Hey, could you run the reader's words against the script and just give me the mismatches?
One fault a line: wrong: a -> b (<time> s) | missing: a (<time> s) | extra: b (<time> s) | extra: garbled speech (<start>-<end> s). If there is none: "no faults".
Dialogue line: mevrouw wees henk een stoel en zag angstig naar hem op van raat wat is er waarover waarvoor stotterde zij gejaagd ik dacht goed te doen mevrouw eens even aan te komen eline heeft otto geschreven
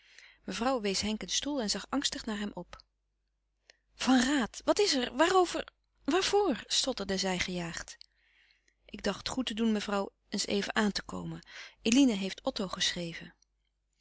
no faults